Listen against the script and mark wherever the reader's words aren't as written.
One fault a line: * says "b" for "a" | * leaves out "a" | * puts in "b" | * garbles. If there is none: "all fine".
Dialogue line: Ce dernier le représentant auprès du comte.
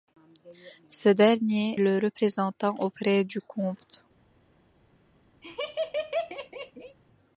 all fine